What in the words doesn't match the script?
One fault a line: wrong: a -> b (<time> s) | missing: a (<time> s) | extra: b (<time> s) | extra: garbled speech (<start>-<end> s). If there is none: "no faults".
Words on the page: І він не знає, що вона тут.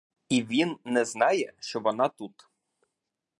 no faults